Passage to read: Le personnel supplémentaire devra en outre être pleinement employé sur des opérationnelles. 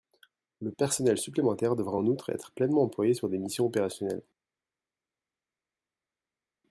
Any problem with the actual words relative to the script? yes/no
yes